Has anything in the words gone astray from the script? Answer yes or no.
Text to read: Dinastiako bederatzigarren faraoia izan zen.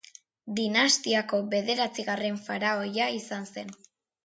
no